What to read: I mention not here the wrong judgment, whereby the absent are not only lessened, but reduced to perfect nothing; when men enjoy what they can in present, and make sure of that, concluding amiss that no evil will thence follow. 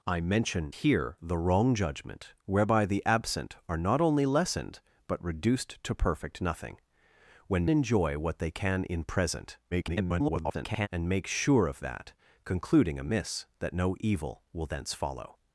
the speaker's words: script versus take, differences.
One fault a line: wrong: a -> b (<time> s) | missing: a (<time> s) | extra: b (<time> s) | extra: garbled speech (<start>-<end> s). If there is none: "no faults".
missing: not (0.7 s)
missing: men (7.7 s)
extra: garbled speech (9.7-10.9 s)